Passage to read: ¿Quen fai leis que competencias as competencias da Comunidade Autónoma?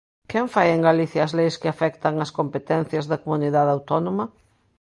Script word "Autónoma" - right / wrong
right